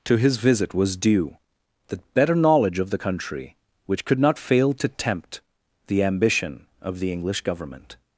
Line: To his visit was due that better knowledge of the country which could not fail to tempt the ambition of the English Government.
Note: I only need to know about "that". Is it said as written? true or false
false